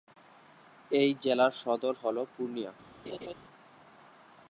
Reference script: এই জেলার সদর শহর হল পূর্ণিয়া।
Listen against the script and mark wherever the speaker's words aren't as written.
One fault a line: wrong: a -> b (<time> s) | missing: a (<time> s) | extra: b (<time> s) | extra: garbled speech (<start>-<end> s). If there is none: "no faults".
missing: শহর (1.9 s)